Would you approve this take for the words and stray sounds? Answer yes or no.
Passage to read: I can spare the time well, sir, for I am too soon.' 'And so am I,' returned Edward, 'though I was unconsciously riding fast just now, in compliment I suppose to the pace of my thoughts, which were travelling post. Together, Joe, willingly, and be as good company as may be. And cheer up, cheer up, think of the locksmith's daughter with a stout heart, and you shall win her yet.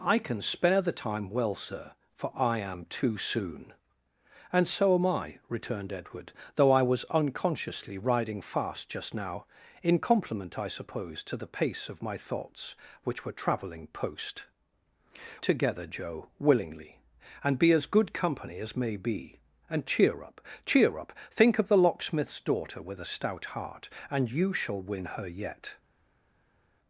yes